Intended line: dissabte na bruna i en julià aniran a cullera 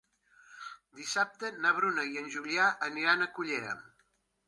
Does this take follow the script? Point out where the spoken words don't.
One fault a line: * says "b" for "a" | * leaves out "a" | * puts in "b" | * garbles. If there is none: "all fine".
all fine